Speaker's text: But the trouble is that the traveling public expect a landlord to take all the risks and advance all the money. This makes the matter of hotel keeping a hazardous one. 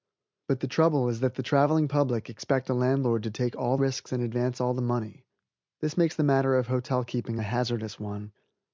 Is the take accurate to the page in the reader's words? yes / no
no